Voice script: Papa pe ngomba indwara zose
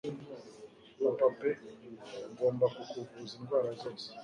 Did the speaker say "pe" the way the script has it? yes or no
yes